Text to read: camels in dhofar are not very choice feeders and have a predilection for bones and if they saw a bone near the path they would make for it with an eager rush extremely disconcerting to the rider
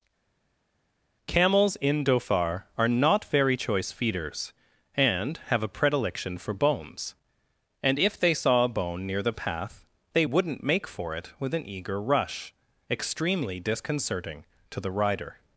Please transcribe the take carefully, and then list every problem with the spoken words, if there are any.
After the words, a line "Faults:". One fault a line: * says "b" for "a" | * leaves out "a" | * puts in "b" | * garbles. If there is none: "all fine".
camels in dhofar are not very choice feeders and have a predilection for bones and if they saw a bone near the path they wouldn't make for it with an eager rush extremely disconcerting to the rider
Faults:
* says "wouldn't" for "would"